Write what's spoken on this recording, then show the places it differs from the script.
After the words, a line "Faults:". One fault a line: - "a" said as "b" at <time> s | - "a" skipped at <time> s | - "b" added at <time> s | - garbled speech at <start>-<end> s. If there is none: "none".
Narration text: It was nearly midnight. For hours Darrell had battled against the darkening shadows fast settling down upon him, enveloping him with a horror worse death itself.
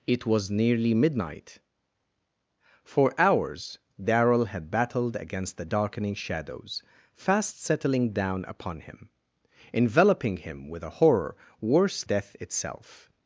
It was nearly midnight. For hours Darrell had battled against the darkening shadows fast settling down upon him, enveloping him with a horror worse death itself.
Faults:
none